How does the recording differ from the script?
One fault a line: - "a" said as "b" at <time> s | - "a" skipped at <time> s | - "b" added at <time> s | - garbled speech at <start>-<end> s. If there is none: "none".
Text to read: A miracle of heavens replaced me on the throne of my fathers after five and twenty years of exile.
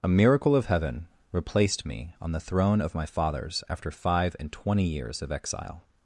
- "heavens" said as "heaven" at 0.7 s